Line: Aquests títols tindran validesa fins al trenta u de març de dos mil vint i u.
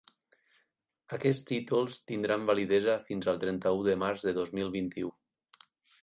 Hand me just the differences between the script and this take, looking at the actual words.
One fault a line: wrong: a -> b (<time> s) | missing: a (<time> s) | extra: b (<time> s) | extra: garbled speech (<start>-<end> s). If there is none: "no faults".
no faults